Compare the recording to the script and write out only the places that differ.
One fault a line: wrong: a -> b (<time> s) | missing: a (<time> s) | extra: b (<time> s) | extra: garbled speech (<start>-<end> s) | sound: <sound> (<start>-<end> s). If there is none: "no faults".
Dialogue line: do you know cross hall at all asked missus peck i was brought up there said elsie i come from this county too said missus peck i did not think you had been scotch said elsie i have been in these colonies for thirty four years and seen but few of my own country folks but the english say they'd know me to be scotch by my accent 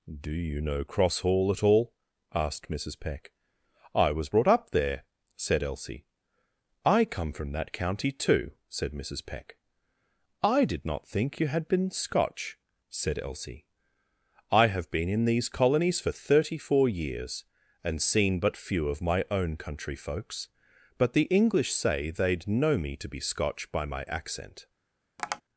wrong: this -> that (7.5 s)
sound: tap (25.2-25.4 s)